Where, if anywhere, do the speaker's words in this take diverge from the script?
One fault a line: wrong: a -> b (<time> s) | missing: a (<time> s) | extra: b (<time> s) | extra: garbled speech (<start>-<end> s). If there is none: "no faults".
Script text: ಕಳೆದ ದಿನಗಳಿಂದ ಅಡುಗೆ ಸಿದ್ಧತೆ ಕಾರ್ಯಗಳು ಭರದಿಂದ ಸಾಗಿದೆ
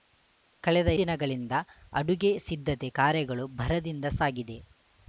no faults